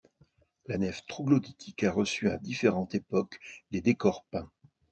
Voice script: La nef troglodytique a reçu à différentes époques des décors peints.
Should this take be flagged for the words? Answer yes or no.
no